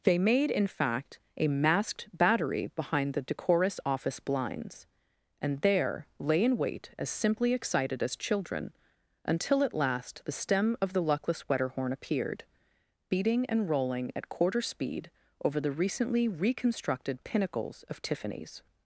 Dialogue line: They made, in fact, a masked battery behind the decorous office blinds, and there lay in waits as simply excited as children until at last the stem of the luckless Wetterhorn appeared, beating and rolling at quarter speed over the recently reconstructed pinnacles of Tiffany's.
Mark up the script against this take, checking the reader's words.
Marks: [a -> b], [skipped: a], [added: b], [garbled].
They made, in fact, a masked battery behind the decorous office blinds, and there lay in [waits -> wait] as simply excited as children until at last the stem of the luckless Wetterhorn appeared, beating and rolling at quarter speed over the recently reconstructed pinnacles of Tiffany's.